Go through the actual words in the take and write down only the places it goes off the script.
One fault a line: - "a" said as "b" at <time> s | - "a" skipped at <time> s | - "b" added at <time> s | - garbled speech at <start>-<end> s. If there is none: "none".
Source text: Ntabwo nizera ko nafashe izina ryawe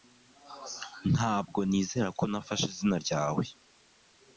none